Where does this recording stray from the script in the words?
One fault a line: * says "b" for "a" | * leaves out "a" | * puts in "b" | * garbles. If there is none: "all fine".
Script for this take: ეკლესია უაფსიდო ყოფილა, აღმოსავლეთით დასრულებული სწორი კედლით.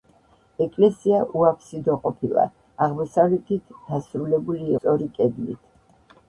all fine